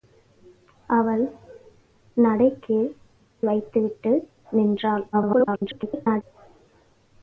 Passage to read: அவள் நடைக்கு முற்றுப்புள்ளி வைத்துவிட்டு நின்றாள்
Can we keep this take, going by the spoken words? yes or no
no